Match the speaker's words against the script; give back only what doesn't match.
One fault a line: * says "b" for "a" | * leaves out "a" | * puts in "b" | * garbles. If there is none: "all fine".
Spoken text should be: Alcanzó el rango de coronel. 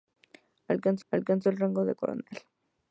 * puts in "alcanzó"